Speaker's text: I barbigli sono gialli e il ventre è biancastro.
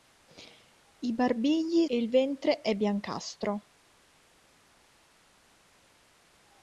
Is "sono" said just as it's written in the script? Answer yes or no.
no